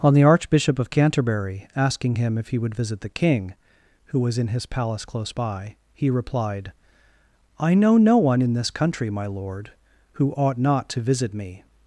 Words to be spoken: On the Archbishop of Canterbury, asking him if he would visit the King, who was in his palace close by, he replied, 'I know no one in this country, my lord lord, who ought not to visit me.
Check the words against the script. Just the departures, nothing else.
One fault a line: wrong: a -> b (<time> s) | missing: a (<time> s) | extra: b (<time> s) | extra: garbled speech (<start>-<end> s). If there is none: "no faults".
missing: lord (9.7 s)